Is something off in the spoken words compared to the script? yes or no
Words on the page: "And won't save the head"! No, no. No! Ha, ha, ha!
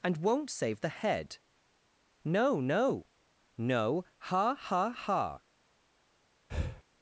no